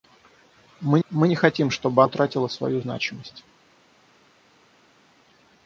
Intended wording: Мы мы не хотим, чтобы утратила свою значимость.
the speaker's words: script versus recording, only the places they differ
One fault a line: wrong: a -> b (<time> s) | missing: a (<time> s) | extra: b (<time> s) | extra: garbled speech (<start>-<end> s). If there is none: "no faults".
no faults